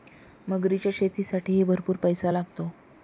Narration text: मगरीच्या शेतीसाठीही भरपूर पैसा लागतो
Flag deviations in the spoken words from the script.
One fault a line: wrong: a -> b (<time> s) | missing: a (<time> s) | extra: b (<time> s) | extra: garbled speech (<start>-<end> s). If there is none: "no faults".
no faults